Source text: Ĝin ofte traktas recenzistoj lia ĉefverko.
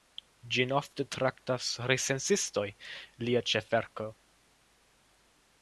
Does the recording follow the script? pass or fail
pass